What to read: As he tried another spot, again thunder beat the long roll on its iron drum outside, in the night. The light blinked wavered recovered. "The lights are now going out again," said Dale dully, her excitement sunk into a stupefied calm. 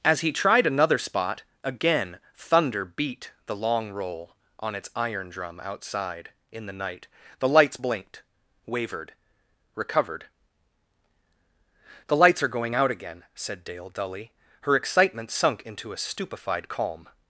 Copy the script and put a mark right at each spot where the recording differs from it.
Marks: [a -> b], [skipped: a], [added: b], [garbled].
As he tried another spot, again thunder beat the long roll on its iron drum outside, in the night. The [light -> lights] blinked wavered recovered. "The lights are [skipped: now] going out again," said Dale dully, her excitement sunk into a stupefied calm.